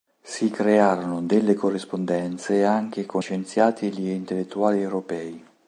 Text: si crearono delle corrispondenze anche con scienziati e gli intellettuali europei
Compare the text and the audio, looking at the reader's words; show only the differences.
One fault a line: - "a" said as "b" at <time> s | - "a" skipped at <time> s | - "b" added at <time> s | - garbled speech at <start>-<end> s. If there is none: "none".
none